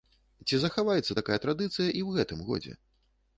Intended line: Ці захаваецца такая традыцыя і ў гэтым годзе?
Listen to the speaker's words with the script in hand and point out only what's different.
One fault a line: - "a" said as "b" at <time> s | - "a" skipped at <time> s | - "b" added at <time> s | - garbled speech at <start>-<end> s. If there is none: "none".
none